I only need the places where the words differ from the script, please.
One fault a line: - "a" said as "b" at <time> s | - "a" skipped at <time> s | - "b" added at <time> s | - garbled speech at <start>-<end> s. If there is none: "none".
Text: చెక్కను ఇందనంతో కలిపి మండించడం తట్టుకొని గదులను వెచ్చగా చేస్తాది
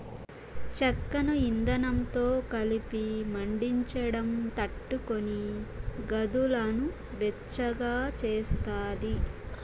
none